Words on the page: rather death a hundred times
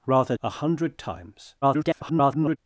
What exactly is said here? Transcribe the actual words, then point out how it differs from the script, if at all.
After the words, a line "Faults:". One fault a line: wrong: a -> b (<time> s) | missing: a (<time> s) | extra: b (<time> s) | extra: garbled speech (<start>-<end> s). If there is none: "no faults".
rather a hundred times [garbled]
Faults:
missing: death (0.3 s)
extra: garbled speech (1.6-2.6 s)